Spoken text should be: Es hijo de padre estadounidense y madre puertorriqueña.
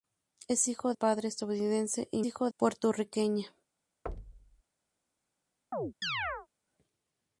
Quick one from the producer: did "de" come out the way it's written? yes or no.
no